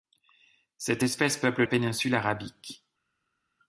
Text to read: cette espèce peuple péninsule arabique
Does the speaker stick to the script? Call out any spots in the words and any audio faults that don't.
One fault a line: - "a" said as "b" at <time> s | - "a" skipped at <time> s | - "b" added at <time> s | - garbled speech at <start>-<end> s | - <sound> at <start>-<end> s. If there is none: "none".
none